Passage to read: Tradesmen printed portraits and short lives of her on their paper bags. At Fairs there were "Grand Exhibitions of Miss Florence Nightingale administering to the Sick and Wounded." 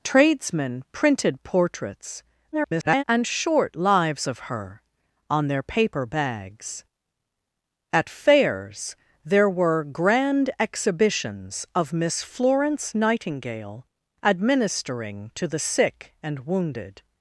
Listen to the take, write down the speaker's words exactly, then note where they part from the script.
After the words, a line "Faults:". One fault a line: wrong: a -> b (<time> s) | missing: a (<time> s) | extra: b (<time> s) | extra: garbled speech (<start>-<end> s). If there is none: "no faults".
Tradesmen printed portraits [garbled] and short lives of her on their paper bags. At Fairs there were "Grand Exhibitions of Miss Florence Nightingale administering to the Sick and Wounded."
Faults:
extra: garbled speech (2.5-3.0 s)